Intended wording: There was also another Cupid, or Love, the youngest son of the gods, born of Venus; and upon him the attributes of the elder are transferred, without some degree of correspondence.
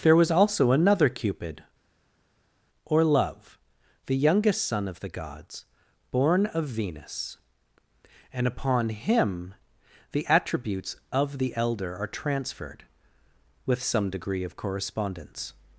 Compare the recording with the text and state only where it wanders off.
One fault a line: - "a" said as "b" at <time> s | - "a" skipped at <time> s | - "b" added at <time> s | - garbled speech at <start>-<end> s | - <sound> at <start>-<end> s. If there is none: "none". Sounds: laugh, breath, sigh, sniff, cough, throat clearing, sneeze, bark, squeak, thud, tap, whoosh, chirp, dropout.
- "without" said as "with" at 13.7 s